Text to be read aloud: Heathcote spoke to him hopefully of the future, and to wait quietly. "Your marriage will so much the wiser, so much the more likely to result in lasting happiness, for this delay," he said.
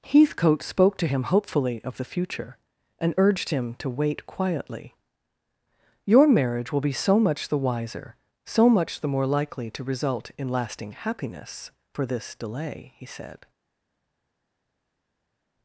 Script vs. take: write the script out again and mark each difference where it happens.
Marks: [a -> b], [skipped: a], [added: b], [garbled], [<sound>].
Heathcote spoke to him hopefully of the future, and [added: urged him] to wait quietly. "Your marriage will [added: be] so much the wiser, so much the more likely to result in lasting happiness, for this delay," he said.